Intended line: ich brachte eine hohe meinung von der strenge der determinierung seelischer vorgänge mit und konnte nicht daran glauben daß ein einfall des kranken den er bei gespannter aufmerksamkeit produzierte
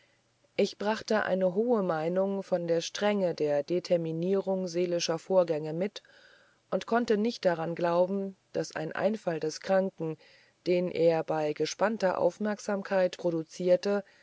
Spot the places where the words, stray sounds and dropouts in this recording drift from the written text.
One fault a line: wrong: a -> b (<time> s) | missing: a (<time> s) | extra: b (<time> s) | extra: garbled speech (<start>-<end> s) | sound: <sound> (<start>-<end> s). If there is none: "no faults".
no faults